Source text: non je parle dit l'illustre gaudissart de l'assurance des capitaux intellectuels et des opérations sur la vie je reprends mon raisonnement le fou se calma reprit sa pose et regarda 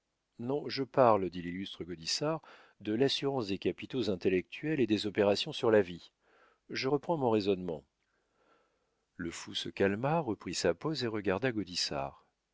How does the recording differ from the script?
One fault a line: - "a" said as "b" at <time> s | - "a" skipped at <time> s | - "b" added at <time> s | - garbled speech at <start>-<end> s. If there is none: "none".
none